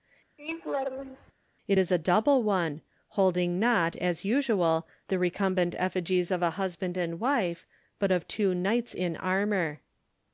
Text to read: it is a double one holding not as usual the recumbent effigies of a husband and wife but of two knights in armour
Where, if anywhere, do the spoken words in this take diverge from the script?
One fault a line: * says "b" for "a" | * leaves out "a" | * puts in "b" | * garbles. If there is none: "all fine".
all fine